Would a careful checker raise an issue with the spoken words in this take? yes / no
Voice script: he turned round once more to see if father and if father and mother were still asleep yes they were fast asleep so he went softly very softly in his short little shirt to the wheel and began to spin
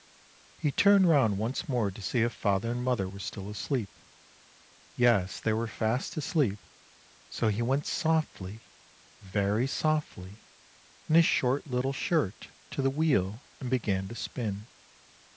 yes